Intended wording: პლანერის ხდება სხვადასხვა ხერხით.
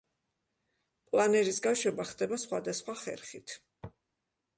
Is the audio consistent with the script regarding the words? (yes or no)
no